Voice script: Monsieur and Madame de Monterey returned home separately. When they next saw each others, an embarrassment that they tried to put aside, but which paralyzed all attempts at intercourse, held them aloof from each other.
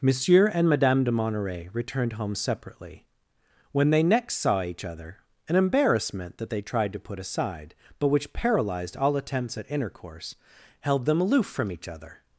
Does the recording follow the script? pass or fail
fail